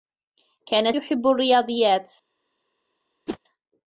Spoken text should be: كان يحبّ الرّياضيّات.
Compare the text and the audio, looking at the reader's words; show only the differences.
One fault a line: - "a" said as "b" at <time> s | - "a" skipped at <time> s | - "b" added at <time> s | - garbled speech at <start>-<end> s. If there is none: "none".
none